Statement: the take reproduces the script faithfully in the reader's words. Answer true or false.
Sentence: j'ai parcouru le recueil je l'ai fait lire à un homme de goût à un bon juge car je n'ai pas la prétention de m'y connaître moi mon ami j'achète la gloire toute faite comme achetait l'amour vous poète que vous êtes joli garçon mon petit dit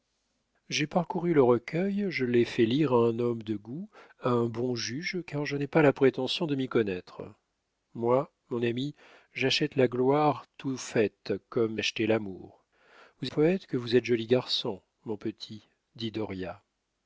true